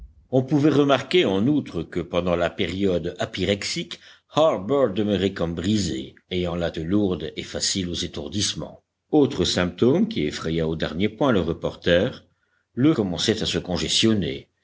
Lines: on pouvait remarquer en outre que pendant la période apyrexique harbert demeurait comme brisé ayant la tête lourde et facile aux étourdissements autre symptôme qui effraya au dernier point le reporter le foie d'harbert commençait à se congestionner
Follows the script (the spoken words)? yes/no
no